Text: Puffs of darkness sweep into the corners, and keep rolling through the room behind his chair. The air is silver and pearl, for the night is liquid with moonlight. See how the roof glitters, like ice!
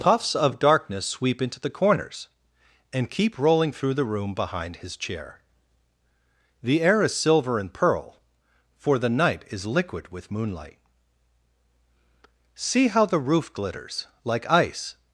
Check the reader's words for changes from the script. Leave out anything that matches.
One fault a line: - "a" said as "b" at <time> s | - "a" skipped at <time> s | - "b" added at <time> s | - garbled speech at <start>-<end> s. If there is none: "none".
none